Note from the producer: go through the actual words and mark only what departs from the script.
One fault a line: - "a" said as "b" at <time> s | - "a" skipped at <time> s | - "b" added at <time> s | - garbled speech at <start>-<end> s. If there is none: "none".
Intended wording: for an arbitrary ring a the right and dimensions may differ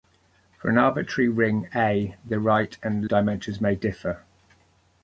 none